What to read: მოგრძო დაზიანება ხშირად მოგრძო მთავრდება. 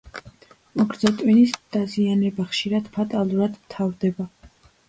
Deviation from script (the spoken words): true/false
true